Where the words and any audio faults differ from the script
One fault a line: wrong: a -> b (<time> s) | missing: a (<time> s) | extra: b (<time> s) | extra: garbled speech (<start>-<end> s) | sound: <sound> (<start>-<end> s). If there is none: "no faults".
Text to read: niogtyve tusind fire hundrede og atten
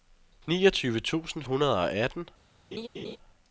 missing: fire (1.4 s)
sound: laugh (2.7-3.2 s)